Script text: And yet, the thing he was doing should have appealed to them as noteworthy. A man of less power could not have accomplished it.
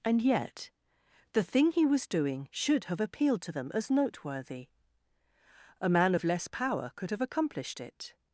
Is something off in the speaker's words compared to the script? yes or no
yes